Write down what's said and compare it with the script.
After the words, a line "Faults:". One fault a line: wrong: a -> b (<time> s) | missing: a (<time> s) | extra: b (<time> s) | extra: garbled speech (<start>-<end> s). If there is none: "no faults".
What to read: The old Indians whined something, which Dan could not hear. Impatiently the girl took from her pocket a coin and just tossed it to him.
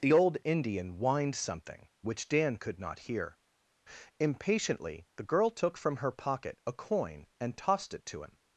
The old Indian whined something, which Dan could not hear. Impatiently the girl took from her pocket a coin and tossed it to him.
Faults:
wrong: Indians -> Indian (0.4 s)
missing: just (7.6 s)